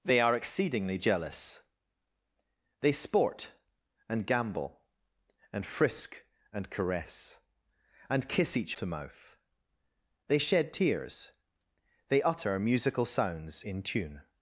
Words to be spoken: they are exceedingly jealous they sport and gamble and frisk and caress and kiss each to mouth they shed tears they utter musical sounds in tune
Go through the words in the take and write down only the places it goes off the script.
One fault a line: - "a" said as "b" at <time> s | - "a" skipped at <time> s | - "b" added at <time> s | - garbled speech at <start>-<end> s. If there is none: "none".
none